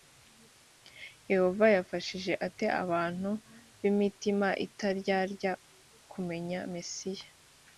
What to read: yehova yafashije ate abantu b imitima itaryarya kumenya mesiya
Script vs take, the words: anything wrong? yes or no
no